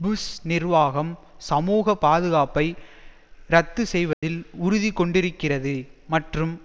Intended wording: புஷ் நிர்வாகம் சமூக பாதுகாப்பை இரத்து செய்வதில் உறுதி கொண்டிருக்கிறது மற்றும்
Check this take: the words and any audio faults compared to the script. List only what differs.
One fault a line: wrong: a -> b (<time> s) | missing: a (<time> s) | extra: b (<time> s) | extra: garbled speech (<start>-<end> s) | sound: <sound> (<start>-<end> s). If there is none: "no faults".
sound: dropout (4.1-4.2 s)